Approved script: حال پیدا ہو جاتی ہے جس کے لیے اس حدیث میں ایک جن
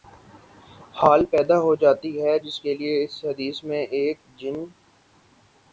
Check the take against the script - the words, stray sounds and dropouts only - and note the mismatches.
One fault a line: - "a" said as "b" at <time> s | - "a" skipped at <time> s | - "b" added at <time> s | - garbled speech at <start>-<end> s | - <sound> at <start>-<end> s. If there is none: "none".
none